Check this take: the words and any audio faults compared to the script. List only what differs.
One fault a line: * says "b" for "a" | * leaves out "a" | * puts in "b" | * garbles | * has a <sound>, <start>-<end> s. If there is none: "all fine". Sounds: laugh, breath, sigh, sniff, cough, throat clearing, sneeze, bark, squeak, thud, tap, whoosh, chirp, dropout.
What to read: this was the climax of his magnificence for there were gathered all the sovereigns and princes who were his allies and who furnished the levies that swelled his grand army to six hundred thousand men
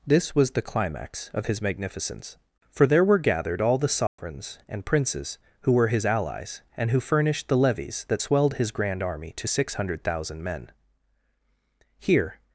* has a dropout, 4.1-4.2 s
* puts in "here"